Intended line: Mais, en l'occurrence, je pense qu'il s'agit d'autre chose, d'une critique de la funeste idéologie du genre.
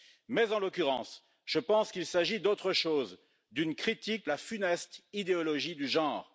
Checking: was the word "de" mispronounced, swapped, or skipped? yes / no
yes